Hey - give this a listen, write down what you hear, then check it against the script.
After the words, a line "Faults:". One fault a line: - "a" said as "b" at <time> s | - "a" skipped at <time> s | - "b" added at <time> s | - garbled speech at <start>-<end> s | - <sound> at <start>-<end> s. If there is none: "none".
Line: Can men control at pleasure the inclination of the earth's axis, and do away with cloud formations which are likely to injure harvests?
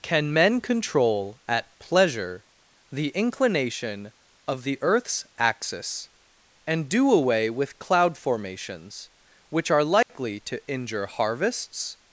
Can men control at pleasure the inclination of the earth's axis, and do away with cloud formations which are likely to injure harvests?
Faults:
- dropout at 10.0-10.1 s